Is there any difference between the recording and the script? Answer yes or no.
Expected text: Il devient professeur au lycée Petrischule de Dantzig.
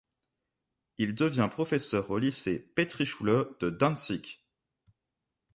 no